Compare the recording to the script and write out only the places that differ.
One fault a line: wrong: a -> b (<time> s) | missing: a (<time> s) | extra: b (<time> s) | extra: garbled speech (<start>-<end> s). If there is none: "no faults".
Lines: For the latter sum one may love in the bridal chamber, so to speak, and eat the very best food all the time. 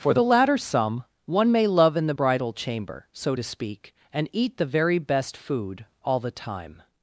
no faults